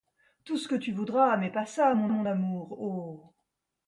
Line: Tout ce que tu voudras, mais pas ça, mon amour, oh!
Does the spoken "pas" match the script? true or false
true